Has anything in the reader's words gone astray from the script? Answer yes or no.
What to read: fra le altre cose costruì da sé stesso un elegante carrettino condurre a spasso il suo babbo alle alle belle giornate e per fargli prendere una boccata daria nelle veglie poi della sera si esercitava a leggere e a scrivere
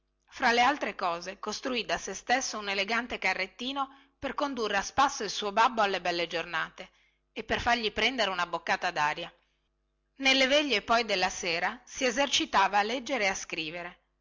yes